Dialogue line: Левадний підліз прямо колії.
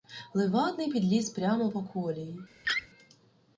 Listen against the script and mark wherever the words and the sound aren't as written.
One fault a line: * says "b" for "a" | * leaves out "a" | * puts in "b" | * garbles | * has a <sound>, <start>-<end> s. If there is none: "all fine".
* puts in "по"
* has a laugh, 2.6-2.9 s